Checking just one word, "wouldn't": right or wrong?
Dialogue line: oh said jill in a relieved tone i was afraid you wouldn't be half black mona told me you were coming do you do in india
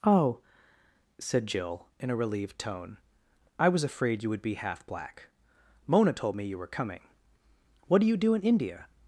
wrong